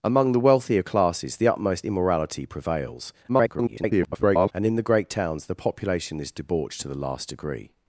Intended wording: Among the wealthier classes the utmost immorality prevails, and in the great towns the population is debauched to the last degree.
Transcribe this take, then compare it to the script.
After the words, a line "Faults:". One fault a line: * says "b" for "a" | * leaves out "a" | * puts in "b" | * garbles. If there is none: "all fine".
Among the wealthier classes the utmost immorality prevails, [garbled] and in the great towns the population is debauched to the last degree.
Faults:
* garbles